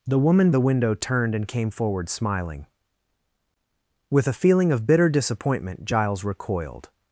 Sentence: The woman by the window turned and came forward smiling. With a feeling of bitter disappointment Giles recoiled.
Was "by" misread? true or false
true